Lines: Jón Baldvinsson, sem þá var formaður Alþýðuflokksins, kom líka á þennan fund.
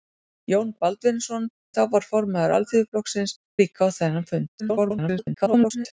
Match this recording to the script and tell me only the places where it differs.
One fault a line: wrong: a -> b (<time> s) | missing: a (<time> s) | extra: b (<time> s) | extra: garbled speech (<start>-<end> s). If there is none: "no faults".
missing: sem (1.4 s)
missing: kom (3.4 s)
extra: garbled speech (4.6-5.9 s)